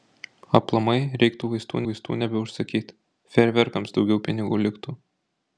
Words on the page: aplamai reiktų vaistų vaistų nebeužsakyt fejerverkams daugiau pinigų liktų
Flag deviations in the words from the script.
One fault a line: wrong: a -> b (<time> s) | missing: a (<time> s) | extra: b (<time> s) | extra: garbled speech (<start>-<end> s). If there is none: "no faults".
no faults